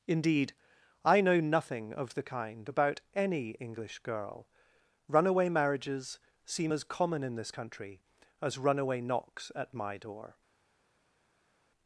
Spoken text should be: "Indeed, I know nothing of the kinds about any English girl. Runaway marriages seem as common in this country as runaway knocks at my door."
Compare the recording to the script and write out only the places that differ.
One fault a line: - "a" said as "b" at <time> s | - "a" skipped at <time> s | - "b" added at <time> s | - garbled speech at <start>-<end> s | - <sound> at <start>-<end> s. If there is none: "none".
- "kinds" said as "kind" at 2.2 s